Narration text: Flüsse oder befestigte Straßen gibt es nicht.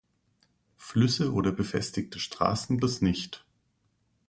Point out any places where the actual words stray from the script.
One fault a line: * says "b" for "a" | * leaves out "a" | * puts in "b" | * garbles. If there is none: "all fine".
* leaves out "gibt"